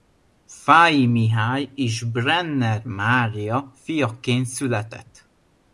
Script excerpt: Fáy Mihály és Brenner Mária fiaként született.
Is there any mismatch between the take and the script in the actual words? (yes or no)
no